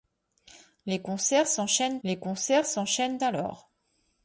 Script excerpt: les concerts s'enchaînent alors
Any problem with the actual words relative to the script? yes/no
yes